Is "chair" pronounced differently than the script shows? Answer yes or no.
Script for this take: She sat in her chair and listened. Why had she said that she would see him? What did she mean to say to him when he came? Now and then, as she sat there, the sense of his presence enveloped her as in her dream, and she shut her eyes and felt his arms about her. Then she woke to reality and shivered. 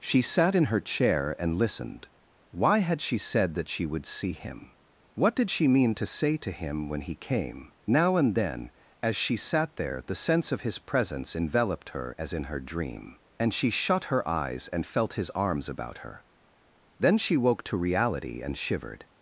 no